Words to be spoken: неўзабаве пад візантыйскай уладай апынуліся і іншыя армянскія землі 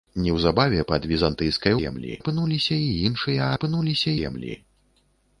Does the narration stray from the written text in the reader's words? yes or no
yes